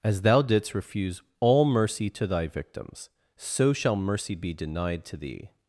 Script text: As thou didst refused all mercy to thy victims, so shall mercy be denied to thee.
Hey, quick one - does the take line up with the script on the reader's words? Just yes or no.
no